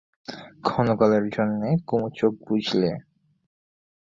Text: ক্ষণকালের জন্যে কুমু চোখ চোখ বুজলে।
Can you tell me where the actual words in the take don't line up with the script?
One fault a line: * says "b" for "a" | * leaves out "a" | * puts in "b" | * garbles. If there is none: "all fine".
* leaves out "চোখ"